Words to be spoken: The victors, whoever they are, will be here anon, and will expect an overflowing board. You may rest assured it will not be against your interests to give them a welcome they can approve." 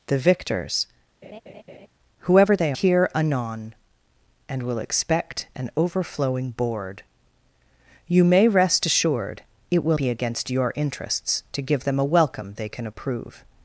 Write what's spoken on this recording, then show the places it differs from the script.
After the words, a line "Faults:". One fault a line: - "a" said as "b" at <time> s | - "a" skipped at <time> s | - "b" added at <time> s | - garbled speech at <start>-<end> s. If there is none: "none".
The victors, whoever they here anon, and will expect an overflowing board. You may rest assured it will be against your interests to give them a welcome they can approve."
Faults:
- "are will be" skipped at 2.7 s
- "not" skipped at 10.0 s